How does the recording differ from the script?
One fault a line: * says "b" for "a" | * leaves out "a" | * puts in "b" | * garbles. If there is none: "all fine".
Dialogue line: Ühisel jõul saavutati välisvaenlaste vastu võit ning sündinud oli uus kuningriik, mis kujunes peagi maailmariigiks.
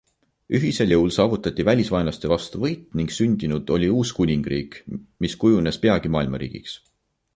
all fine